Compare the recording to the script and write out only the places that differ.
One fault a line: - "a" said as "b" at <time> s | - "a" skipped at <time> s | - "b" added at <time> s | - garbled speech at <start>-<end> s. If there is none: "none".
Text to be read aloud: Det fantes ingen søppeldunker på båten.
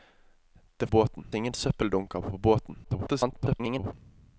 - "fantes" said as "båten" at 0.9 s
- garbled speech at 2.8-3.9 s